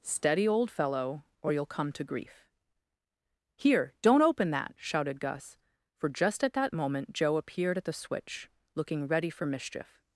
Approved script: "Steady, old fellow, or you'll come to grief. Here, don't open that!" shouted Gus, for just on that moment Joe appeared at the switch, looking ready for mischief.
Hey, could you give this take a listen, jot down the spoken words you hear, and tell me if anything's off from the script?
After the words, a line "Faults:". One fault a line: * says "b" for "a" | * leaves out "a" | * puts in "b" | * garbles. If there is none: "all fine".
"Steady, old fellow, or you'll come to grief. Here, don't open that!" shouted Gus, for just at that moment Joe appeared at the switch, looking ready for mischief.
Faults:
* says "at" for "on"